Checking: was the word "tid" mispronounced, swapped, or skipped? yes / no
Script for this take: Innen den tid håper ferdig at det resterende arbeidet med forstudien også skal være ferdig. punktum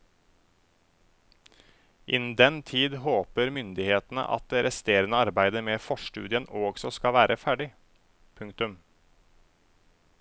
no